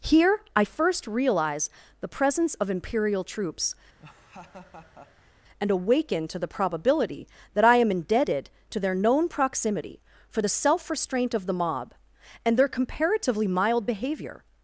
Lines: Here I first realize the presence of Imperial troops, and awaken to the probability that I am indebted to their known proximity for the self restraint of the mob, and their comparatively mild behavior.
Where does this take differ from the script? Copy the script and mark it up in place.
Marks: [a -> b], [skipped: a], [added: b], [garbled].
Here I first realize the presence of Imperial troops, and awaken to the probability that I am indebted to their known proximity for the self restraint of the mob, and their comparatively mild behavior.